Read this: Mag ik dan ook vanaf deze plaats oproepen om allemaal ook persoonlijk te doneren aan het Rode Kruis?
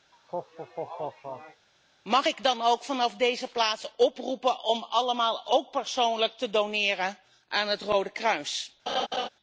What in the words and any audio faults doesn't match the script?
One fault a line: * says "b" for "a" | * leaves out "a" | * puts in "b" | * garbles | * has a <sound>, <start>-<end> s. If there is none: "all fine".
* has a laugh, 0.1-1.7 s
* has a laugh, 8.9-9.3 s